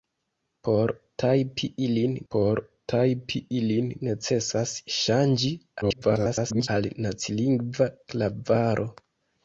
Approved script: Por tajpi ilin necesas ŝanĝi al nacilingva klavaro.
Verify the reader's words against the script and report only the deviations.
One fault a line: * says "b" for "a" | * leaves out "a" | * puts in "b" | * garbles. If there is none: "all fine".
* puts in "por tajpi ilin"
* garbles